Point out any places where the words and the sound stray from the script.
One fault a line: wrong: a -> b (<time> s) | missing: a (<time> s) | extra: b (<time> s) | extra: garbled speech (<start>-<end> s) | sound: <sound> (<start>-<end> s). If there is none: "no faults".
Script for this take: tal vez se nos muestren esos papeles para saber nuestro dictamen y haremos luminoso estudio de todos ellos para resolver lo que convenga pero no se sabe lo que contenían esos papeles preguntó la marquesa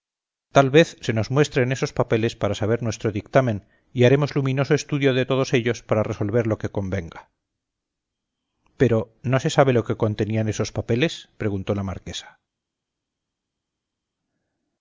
no faults